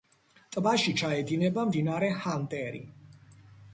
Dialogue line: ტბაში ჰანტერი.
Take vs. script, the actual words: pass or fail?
fail